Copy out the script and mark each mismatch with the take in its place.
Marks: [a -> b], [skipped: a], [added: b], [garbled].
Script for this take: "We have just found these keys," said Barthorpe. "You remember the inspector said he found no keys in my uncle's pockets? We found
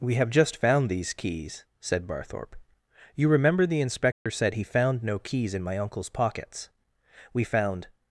"We have just found these keys," said Barthorpe. "You remember the inspector said he found no keys in my uncle's pockets? We found